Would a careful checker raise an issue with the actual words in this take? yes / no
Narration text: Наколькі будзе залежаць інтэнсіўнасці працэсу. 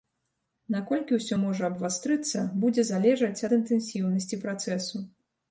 yes